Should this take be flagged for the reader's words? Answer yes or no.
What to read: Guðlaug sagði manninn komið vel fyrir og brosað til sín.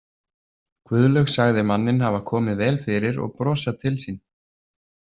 yes